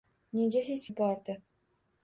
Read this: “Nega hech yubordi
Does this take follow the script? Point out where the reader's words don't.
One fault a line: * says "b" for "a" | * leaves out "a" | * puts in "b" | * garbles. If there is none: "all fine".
all fine